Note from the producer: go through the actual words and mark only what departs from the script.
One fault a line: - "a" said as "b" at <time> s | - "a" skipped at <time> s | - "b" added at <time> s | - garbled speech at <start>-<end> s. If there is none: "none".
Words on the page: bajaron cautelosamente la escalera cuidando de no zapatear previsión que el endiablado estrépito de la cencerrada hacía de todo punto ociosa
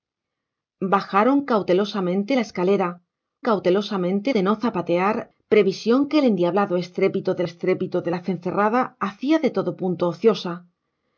- "cuidando" said as "cautelosamente" at 3.4 s
- "estrépito de" added at 7.4 s